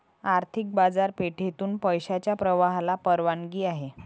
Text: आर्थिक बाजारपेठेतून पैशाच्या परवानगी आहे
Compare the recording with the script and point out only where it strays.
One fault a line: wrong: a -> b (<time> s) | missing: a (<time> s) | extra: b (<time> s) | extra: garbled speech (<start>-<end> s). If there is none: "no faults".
extra: प्रवाहाला (2.3 s)